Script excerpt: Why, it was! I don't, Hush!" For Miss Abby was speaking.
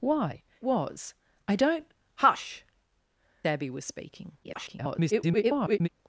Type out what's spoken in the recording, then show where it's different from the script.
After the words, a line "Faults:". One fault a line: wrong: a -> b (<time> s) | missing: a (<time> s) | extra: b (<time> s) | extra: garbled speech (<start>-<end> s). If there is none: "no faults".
Why, was! I don't, Hush!" Abby was speaking. [garbled]
Faults:
missing: it (0.4 s)
missing: For Miss (2.6 s)
extra: garbled speech (4.4-5.9 s)